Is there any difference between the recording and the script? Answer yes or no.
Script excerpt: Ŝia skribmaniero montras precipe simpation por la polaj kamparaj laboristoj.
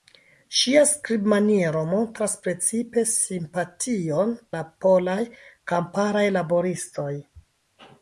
yes